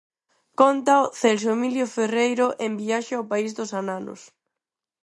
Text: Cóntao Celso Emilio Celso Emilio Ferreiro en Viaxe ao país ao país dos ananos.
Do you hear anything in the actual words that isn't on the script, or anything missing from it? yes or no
yes